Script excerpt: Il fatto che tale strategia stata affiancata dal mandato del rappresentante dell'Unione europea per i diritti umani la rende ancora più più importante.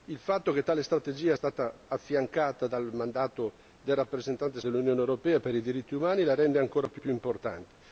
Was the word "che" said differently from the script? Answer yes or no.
no